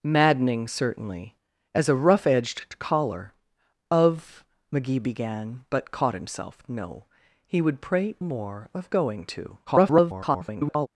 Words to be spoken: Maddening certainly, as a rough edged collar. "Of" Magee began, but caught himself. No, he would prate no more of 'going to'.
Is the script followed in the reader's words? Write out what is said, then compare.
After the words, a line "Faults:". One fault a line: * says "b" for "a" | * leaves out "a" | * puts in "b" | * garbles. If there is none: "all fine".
Maddening certainly, as a rough edged collar. "Of" Magee began, but caught himself. No, he would prate more of 'going to'. [garbled]
Faults:
* leaves out "no"
* garbles